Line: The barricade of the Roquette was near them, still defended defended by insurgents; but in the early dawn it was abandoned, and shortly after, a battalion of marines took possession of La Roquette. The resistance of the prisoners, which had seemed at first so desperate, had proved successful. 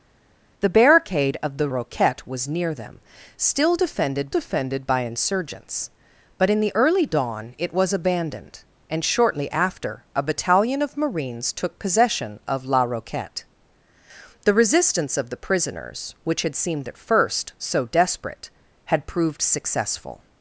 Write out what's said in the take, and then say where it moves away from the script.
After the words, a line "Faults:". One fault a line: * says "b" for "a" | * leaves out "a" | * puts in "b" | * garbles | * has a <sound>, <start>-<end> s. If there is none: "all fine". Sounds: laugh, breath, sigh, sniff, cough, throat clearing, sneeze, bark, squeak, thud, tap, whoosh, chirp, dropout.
The barricade of the Roquette was near them, still defended defended by insurgents; but in the early dawn it was abandoned, and shortly after, a battalion of marines took possession of La Roquette. The resistance of the prisoners, which had seemed at first so desperate, had proved successful.
Faults:
all fine